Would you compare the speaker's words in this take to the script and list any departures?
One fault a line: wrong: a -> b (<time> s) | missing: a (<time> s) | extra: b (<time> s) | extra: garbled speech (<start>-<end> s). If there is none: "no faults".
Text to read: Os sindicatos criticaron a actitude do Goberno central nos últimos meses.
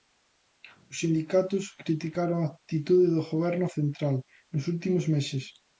no faults